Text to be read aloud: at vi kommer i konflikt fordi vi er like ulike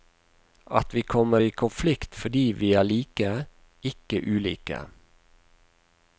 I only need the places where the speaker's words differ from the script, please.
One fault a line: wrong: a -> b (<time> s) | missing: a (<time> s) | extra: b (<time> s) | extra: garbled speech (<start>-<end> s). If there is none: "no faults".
extra: ikke (3.8 s)